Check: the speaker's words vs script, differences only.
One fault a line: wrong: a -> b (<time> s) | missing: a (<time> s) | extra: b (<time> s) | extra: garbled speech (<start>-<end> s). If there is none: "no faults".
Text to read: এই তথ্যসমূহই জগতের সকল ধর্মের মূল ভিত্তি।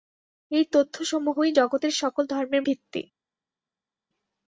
missing: মূল (2.6 s)